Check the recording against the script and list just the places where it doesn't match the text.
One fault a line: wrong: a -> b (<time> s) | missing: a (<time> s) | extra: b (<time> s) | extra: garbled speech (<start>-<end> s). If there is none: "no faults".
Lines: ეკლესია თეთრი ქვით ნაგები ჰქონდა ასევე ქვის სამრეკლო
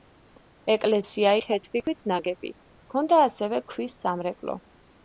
no faults